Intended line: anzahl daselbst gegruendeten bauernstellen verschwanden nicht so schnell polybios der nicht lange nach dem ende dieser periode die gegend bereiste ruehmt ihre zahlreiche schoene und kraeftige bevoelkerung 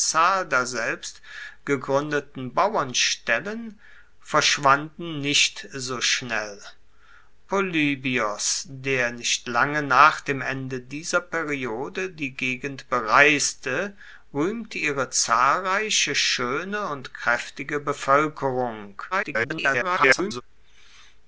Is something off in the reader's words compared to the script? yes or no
yes